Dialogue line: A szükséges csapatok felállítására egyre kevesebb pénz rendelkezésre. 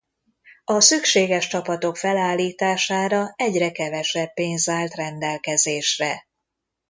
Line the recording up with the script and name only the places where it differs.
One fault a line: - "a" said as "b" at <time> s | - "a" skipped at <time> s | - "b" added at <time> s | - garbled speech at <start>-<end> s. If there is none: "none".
- "állt" added at 4.7 s